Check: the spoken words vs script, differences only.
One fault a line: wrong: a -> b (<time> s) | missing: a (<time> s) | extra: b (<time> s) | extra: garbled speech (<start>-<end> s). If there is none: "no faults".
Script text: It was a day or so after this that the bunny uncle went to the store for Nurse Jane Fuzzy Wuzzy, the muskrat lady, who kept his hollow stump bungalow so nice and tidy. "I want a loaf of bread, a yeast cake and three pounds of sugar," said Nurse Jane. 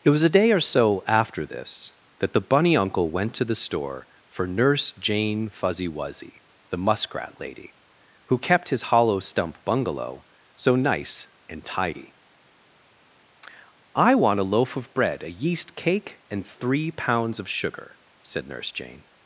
no faults